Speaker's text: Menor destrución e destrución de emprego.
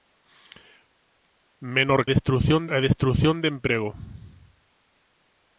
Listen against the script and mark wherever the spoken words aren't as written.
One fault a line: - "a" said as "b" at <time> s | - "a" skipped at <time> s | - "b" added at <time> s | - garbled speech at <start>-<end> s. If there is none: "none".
none